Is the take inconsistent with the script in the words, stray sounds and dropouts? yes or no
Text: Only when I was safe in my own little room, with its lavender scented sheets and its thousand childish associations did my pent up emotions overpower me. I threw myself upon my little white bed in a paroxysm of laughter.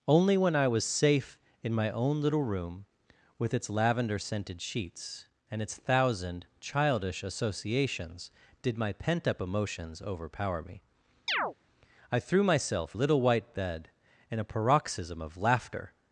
yes